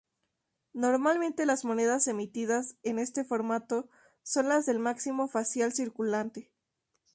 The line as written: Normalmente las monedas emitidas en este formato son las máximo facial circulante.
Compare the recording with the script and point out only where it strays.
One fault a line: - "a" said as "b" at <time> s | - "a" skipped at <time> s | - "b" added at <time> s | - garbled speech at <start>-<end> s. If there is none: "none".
- "del" added at 4.7 s